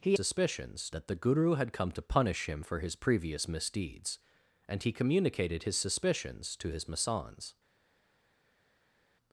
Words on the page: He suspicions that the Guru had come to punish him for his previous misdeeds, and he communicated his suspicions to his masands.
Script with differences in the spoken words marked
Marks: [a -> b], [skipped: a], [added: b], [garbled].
He suspicions that the Guru had come to punish him for his previous misdeeds, and he communicated his suspicions to his masands.